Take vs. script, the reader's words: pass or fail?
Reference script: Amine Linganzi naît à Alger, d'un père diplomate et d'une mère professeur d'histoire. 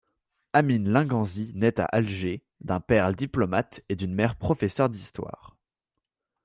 pass